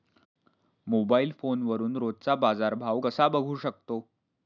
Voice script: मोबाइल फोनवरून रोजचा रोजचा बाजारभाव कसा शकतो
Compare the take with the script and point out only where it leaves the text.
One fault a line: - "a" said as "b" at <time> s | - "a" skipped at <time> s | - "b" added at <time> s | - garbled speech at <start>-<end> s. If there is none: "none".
- "रोजचा" skipped at 2.4 s
- "बघू" added at 3.3 s